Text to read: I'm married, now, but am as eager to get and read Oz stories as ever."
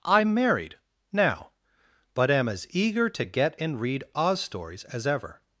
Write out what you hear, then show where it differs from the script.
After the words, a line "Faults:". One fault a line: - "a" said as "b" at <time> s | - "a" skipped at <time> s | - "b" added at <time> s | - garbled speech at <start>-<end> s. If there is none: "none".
I'm married, now, but am as eager to get and read Oz stories as ever."
Faults:
none